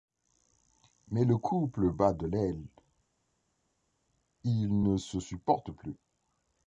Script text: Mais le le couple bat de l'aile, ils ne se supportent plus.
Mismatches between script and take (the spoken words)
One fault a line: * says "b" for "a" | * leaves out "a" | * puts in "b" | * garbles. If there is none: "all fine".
* leaves out "le"